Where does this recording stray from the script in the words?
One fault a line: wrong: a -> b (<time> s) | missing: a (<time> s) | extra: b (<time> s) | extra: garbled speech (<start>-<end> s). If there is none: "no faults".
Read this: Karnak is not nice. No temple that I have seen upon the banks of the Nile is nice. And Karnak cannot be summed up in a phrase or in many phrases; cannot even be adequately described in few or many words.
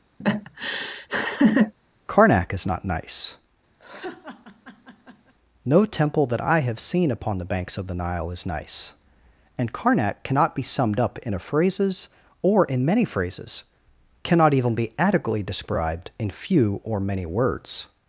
wrong: phrase -> phrases (11.4 s)